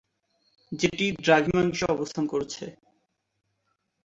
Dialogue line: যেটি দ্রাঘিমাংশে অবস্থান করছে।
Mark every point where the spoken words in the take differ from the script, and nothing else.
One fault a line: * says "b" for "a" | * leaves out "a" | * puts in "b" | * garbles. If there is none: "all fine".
all fine